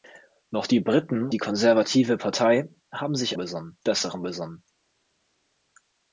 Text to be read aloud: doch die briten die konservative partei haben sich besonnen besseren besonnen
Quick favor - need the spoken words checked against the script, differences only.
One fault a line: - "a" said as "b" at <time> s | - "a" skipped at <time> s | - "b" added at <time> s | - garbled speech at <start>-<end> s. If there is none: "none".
none